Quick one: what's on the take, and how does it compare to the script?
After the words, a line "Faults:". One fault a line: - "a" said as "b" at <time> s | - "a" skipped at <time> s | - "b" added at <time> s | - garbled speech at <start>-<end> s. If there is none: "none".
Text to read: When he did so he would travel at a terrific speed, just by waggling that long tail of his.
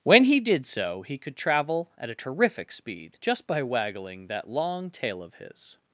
When he did so he could travel at a terrific speed, just by waggling that long tail of his.
Faults:
- "would" said as "could" at 1.2 s